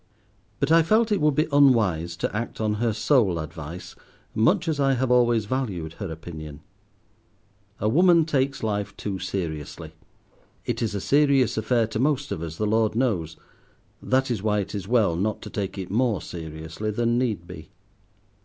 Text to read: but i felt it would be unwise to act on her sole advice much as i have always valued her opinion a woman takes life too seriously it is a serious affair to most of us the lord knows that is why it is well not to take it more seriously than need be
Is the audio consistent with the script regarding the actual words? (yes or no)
yes